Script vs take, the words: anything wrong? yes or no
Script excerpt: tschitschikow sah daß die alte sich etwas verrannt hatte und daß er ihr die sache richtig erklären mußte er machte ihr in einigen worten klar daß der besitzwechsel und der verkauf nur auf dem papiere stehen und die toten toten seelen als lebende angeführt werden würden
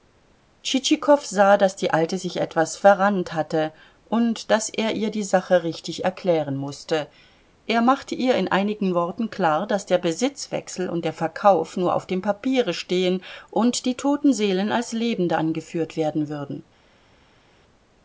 yes